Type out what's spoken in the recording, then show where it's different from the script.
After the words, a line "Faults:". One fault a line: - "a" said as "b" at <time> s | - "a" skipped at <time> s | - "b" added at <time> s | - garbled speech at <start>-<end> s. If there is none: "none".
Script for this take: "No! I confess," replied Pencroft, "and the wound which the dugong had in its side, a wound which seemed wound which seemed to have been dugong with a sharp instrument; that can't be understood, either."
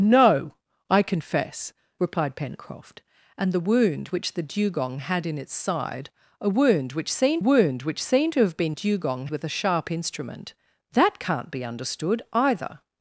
"No! I confess," replied Pencroft, "and the wound which the dugong had in its side, a wound which seemed wound which seemed to have been dugong with a sharp instrument; that can't be understood, either."
Faults:
none